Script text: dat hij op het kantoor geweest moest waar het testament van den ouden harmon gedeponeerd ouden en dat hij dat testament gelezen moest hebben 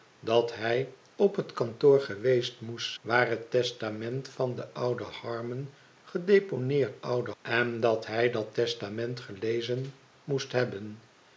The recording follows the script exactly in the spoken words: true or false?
true